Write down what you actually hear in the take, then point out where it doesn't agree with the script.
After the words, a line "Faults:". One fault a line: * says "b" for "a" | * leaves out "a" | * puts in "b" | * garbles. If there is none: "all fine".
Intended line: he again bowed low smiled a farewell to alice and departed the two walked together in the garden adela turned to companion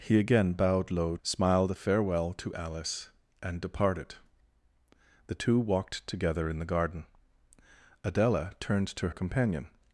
he again bowed low smiled a farewell to alice and departed the two walked together in the garden adela turned to companion
Faults:
all fine